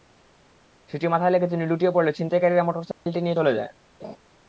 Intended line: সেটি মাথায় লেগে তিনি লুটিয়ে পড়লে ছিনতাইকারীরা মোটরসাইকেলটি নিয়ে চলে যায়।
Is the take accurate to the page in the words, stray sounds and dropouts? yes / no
no